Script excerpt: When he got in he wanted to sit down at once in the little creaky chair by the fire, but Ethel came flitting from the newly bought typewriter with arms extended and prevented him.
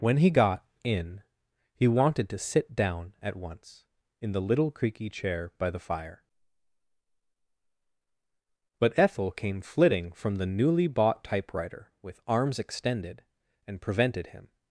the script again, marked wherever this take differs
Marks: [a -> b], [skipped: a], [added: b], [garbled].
When he got in he wanted to sit down at once in the little creaky chair by the fire, but Ethel came flitting from the newly bought typewriter with arms extended and prevented him.